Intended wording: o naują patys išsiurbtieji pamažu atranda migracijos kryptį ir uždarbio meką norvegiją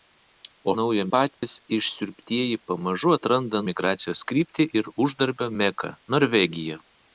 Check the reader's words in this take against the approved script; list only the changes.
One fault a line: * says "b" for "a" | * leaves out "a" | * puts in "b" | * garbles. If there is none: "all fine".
all fine